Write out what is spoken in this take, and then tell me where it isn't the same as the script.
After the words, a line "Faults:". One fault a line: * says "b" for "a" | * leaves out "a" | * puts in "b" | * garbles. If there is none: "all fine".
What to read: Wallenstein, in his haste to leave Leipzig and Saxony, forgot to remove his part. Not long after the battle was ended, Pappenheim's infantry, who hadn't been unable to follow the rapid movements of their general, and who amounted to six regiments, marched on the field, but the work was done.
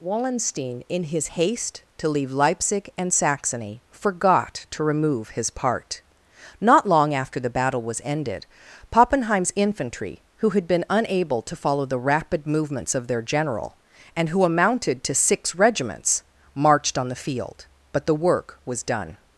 Wallenstein, in his haste to leave Leipzig and Saxony, forgot to remove his part. Not long after the battle was ended, Pappenheim's infantry, who had been unable to follow the rapid movements of their general, and who amounted to six regiments, marched on the field, but the work was done.
Faults:
* says "had" for "hadn't"